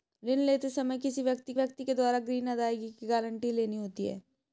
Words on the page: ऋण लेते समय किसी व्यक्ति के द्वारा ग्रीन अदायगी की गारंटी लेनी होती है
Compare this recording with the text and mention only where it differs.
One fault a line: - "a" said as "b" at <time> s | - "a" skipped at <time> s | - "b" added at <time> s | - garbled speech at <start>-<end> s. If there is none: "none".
- "व्यक्ति" added at 1.5 s